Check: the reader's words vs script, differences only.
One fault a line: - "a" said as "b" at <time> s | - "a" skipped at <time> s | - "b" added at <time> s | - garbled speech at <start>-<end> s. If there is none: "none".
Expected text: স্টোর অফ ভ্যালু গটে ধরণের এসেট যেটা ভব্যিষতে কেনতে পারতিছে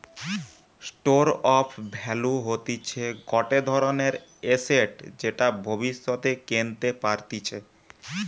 - "হতিছে" added at 2.5 s